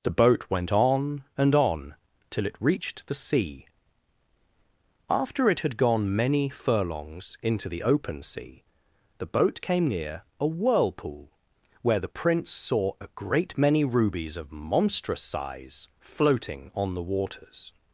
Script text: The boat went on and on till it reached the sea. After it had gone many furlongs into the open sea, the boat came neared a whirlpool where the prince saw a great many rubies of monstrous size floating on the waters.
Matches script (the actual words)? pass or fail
fail